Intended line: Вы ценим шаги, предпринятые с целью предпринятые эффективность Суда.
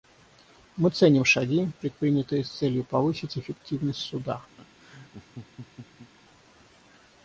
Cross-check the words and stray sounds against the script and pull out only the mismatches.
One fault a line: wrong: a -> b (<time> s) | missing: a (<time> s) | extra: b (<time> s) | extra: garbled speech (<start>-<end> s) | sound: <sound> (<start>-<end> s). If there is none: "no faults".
wrong: Вы -> Мы (0.8 s)
wrong: предпринятые -> повысить (2.8 s)
sound: laugh (4.6-6.1 s)